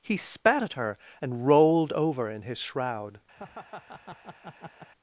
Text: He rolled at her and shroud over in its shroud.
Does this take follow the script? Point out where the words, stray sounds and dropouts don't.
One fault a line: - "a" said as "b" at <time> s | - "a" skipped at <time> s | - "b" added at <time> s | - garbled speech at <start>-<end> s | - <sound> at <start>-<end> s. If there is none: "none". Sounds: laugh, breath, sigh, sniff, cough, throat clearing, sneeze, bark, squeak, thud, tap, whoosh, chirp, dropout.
- "rolled" said as "spat" at 0.2 s
- "shroud" said as "rolled" at 1.5 s
- "its" said as "his" at 2.4 s
- laugh at 3.4-4.9 s